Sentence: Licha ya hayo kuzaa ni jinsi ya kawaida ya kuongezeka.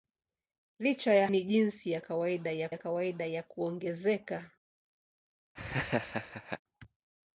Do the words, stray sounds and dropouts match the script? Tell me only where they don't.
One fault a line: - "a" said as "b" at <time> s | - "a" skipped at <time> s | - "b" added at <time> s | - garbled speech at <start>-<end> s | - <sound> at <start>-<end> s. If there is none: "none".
- "hayo kuzaa ni jinsi" said as "ni jinsi ya kawaida ya" at 1.3 s
- laugh at 5.6-6.6 s